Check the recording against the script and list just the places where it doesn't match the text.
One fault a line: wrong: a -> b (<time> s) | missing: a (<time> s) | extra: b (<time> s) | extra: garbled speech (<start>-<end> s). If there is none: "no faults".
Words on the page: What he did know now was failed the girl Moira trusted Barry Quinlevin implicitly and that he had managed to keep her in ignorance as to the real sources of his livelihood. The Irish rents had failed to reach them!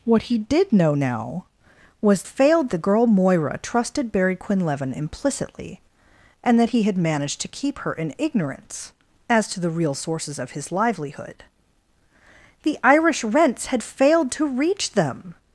no faults